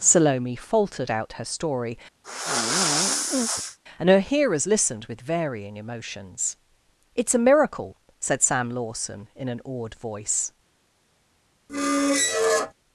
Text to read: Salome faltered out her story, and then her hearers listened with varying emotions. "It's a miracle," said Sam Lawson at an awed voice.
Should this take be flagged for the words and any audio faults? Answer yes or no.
yes